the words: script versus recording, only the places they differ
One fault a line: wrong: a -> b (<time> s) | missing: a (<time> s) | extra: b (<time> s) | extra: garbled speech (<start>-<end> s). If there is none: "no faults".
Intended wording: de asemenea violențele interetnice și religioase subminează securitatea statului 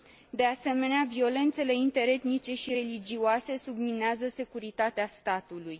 no faults